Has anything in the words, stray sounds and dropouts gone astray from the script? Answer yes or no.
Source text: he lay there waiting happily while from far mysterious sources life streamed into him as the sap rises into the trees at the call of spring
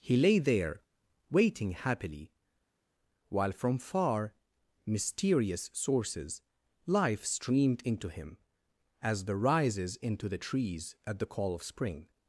yes